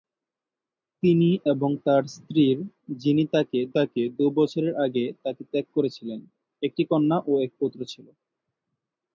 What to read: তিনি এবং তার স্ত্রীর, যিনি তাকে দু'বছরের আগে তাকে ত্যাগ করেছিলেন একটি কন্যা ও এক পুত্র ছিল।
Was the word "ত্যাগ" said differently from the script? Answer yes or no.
no